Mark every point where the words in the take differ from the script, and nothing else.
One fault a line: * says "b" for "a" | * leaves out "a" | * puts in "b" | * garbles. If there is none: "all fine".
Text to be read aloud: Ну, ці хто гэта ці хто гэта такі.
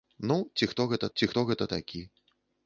all fine